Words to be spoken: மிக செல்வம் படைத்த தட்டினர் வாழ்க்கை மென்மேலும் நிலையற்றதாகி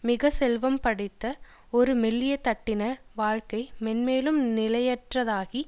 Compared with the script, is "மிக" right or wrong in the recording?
right